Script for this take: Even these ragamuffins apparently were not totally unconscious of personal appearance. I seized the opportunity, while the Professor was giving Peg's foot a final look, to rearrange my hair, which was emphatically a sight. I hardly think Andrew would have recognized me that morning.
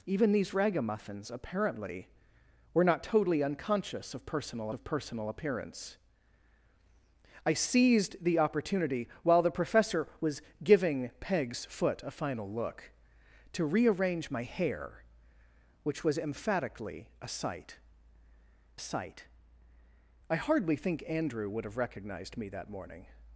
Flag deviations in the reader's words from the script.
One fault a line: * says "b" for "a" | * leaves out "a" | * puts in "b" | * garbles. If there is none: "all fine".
* puts in "of personal"
* puts in "sight"